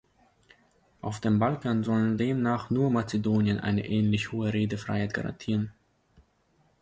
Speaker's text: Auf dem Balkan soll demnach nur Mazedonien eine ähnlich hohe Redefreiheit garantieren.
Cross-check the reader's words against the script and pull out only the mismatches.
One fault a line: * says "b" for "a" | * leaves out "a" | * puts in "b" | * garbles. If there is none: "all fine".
all fine